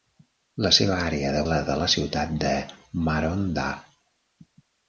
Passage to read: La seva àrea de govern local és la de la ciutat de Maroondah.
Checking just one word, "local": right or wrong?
wrong